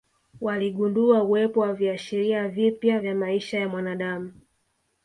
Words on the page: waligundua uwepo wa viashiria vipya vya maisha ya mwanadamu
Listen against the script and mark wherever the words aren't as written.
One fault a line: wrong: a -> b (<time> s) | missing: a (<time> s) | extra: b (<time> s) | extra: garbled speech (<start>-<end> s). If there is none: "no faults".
no faults